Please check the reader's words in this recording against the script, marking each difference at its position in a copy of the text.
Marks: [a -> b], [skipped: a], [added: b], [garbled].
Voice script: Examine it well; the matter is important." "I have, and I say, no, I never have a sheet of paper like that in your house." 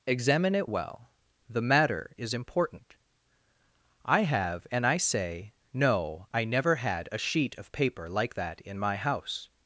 Examine it well; the matter is important." "I have, and I say, no, I never [have -> had] a sheet of paper like that in [your -> my] house."